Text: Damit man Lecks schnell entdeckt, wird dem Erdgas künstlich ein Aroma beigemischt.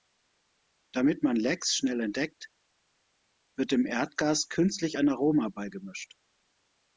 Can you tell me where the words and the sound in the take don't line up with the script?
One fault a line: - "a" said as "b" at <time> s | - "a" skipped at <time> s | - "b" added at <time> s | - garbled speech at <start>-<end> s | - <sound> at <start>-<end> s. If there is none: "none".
none